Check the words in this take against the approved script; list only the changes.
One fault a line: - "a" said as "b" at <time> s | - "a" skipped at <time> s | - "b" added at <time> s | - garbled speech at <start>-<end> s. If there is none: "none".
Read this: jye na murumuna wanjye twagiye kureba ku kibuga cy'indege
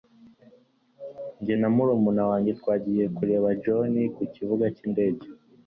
- "john" added at 3.6 s